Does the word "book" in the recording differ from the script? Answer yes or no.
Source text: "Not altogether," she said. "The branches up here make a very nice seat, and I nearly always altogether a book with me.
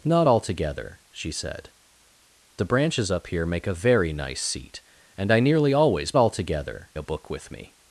no